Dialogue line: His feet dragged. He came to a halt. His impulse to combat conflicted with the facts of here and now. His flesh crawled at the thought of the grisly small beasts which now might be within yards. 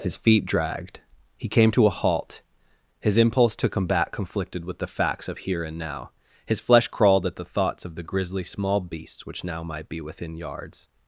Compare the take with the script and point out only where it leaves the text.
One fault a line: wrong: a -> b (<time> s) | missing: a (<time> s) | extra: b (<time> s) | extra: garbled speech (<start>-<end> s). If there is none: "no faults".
wrong: thought -> thoughts (7.4 s)